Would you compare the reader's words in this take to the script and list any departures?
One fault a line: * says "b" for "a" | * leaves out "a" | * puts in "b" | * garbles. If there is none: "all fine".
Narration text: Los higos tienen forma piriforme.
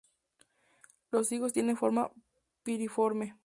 all fine